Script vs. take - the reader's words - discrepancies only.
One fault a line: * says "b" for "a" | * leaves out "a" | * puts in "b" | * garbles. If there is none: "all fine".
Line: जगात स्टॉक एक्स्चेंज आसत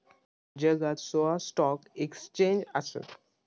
* puts in "सोळा"